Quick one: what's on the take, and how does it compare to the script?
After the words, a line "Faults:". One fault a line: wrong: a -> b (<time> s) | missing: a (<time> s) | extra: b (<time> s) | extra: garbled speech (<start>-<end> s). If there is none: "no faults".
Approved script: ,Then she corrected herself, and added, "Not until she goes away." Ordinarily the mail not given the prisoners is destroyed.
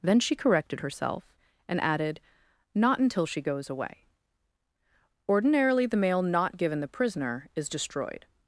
,Then she corrected herself, and added, "Not until she goes away." Ordinarily the mail not given the prisoner is destroyed.
Faults:
wrong: prisoners -> prisoner (6.9 s)